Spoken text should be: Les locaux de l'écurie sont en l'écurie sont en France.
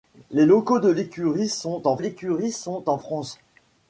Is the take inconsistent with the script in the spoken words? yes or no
no